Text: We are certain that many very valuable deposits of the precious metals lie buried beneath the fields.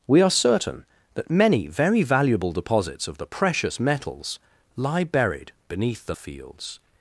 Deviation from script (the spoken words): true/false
false